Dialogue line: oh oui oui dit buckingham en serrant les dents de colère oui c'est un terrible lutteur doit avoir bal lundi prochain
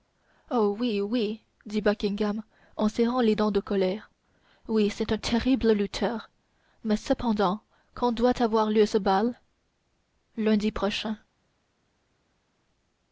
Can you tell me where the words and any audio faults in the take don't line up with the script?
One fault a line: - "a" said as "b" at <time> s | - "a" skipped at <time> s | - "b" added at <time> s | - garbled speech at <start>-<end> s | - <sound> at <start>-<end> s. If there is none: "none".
- "mais cependant quand" added at 6.8 s
- "lieu ce" added at 8.7 s